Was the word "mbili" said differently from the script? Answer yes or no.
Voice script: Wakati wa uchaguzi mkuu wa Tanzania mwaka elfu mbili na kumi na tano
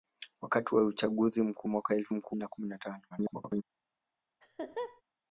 yes